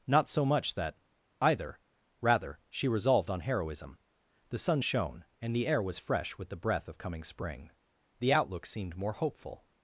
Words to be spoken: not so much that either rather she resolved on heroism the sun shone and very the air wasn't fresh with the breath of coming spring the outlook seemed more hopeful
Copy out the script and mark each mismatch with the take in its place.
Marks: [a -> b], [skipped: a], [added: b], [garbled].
not so much that either rather she resolved on heroism the sun shone and [skipped: very] the air [wasn't -> was] fresh with the breath of coming spring the outlook seemed more hopeful